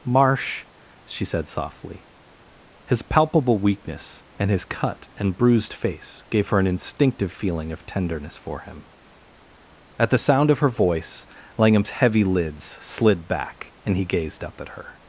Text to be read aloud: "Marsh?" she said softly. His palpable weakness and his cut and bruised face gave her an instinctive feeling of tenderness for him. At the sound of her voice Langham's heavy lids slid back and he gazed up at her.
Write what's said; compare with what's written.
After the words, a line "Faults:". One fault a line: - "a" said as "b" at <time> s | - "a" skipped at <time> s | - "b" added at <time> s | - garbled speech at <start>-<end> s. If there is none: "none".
"Marsh?" she said softly. His palpable weakness and his cut and bruised face gave her an instinctive feeling of tenderness for him. At the sound of her voice Langham's heavy lids slid back and he gazed up at her.
Faults:
none